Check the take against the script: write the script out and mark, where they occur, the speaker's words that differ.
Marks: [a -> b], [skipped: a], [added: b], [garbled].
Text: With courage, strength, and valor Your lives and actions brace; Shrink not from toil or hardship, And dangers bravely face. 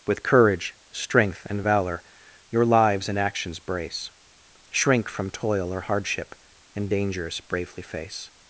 With courage, strength, and valor Your lives and actions brace; Shrink [skipped: not] from toil or hardship, And dangers bravely face.